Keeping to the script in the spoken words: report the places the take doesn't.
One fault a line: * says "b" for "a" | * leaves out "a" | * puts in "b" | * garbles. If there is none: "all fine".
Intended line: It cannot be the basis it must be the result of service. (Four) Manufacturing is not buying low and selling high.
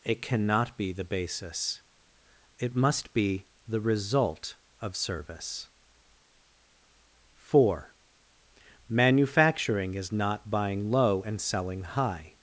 all fine